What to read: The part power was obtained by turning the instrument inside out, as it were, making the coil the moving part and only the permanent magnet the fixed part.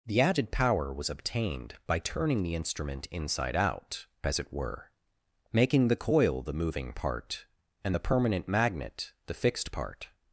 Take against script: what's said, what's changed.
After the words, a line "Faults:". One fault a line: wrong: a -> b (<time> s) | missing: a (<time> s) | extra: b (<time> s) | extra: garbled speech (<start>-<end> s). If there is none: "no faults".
The added power was obtained by turning the instrument inside out, as it were, making the coil the moving part and the permanent magnet the fixed part.
Faults:
wrong: part -> added (0.2 s)
missing: only (8.0 s)